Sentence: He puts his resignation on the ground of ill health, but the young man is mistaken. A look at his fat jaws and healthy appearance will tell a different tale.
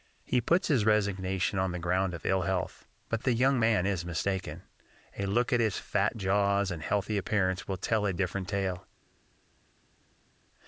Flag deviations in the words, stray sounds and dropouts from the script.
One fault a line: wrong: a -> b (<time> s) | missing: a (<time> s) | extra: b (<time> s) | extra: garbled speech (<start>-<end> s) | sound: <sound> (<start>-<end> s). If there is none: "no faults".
no faults